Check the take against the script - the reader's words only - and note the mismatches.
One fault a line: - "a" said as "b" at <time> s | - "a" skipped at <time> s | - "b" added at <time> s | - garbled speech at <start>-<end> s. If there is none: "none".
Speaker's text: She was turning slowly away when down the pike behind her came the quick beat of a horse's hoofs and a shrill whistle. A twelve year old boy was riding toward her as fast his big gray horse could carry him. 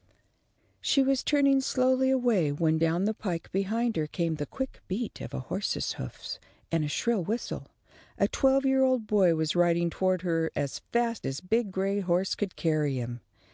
none